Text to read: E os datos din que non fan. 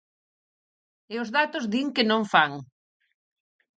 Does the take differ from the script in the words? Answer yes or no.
no